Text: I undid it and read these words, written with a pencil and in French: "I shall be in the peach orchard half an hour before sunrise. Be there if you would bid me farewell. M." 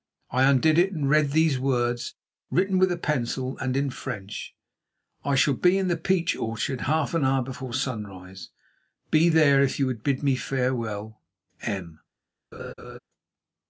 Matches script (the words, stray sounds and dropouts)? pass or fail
fail